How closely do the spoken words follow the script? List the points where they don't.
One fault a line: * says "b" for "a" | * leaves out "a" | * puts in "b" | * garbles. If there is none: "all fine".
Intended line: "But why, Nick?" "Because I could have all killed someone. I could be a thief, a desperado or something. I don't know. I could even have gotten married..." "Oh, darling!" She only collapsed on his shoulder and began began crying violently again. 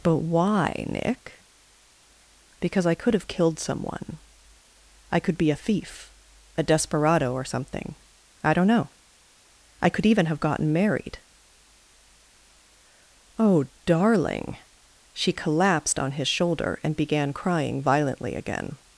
* leaves out "all"
* leaves out "only"
* leaves out "began"